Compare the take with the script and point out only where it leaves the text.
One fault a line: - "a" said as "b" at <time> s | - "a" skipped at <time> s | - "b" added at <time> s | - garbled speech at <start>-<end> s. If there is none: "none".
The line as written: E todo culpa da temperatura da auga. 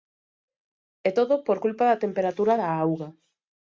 - "por" added at 1.5 s